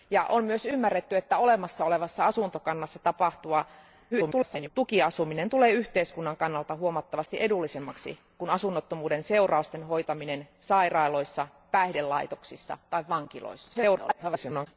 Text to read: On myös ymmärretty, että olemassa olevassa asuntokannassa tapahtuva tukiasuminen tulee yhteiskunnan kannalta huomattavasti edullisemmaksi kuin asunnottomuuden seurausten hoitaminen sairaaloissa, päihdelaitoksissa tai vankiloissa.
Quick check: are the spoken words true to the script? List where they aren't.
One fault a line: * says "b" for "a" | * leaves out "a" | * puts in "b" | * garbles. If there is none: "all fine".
* garbles
* garbles